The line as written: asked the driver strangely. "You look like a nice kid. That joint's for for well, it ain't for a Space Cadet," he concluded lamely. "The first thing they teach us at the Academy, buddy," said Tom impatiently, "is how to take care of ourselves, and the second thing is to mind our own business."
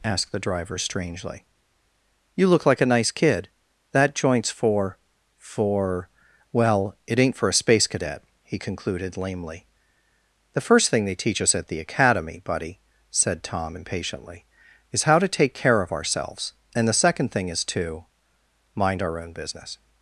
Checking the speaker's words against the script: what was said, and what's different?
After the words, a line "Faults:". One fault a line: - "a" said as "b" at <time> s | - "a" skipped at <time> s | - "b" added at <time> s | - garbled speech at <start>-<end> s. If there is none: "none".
asked the driver strangely. "You look like a nice kid. That joint's for for well, it ain't for a Space Cadet," he concluded lamely. "The first thing they teach us at the Academy, buddy," said Tom impatiently, "is how to take care of ourselves, and the second thing is to mind our own business."
Faults:
none